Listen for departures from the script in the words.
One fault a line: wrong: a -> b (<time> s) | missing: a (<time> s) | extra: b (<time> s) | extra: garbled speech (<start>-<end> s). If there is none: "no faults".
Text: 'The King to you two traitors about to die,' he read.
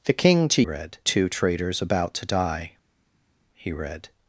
wrong: you -> read (0.6 s)